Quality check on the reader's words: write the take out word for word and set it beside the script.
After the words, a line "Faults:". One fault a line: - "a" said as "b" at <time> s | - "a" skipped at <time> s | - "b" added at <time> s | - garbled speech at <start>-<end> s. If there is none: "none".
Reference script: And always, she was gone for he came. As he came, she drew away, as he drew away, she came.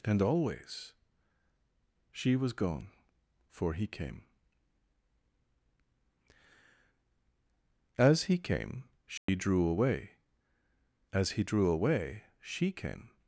And always, she was gone for he came. As he came, she drew away, as he drew away, she came.
Faults:
none